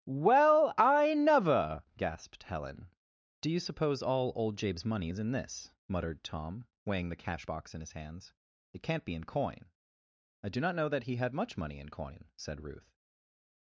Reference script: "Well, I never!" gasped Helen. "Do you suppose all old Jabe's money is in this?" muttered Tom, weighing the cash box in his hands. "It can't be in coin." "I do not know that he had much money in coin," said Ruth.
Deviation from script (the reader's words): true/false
false